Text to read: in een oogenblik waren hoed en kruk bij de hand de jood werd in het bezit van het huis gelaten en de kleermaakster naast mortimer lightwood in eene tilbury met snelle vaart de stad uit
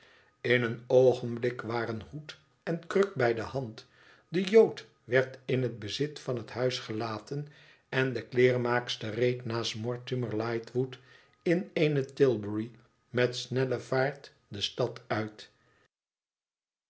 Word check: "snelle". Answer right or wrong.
right